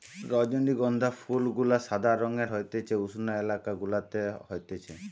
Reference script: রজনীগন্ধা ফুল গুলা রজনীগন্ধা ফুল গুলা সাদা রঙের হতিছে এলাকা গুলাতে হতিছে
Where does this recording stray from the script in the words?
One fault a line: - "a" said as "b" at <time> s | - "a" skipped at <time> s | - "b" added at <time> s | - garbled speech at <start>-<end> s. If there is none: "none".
- "রজনীগন্ধা ফুল গুলা" skipped at 1.8 s
- "উষ্ণ" added at 3.0 s